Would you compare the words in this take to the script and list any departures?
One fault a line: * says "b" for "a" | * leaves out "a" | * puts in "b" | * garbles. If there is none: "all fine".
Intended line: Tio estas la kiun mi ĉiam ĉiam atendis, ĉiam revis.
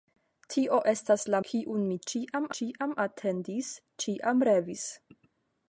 all fine